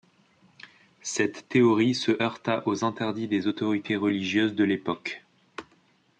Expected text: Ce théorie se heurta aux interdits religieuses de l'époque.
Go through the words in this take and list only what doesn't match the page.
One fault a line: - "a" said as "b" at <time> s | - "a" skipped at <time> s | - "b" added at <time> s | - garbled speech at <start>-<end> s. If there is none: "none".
- "Ce" said as "Cette" at 1.0 s
- "des autorités" added at 3.3 s